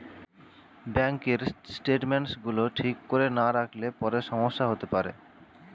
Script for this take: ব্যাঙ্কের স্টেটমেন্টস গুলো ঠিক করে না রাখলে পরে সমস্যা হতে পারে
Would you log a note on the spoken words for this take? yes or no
no